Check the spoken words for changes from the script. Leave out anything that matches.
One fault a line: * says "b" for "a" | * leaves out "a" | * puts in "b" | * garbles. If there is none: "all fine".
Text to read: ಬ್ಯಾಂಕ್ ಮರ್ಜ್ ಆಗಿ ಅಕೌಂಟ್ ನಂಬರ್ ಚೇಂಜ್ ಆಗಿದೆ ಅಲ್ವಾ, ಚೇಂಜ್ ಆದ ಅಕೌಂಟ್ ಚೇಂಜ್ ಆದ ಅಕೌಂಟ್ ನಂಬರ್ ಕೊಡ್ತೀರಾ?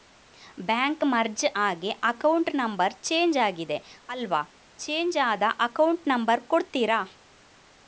* leaves out "ಚೇಂಜ್ ಆದ ಅಕೌಂಟ್"